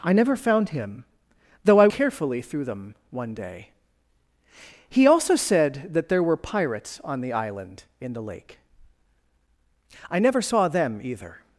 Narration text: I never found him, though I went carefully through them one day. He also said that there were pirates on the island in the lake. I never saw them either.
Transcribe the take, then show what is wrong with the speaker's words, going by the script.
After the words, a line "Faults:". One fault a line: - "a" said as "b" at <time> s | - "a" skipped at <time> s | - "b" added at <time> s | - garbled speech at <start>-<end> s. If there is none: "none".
I never found him, though I carefully through them one day. He also said that there were pirates on the island in the lake. I never saw them either.
Faults:
- "went" skipped at 1.9 s